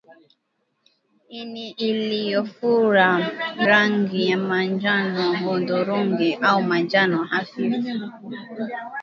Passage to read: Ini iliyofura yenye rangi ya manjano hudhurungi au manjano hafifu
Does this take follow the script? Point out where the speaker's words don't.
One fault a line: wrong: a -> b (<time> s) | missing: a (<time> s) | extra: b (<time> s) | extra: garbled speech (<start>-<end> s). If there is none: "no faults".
missing: yenye (3.1 s)